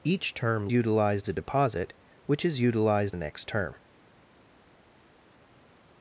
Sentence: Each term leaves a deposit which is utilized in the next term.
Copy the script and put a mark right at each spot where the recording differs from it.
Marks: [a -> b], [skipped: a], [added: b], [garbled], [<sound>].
Each term [leaves -> utilized] a deposit which is utilized [skipped: in] the next term.